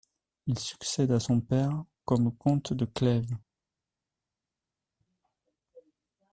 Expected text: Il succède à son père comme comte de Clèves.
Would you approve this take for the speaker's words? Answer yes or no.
yes